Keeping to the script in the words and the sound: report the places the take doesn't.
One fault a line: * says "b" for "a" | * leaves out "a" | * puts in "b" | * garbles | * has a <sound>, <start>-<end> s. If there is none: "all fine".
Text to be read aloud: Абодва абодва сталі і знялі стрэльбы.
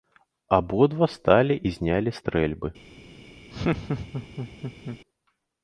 * leaves out "абодва"
* has a laugh, 3.5-5.0 s